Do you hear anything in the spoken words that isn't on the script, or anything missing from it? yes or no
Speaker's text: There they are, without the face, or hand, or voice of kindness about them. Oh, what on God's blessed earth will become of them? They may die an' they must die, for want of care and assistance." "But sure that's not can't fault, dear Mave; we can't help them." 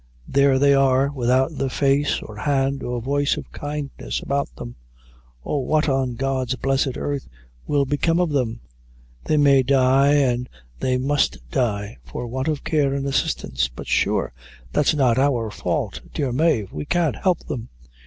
yes